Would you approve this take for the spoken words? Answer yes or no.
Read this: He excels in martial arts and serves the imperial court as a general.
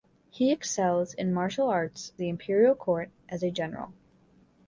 no